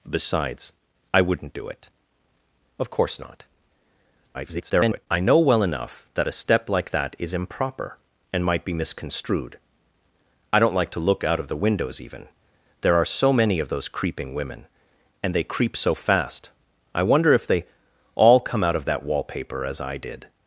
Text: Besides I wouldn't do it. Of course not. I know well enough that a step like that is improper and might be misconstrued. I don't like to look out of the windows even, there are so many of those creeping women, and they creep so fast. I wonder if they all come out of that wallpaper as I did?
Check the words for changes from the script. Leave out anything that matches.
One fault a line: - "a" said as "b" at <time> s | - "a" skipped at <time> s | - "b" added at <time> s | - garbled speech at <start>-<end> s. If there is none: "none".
- garbled speech at 4.3-5.1 s